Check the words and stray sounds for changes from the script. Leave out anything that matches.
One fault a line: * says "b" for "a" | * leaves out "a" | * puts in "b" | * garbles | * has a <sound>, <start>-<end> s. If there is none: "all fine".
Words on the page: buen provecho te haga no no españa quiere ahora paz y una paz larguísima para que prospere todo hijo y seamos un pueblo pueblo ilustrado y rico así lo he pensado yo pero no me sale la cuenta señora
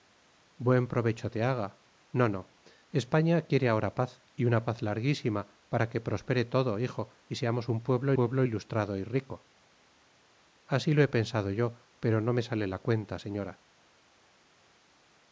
all fine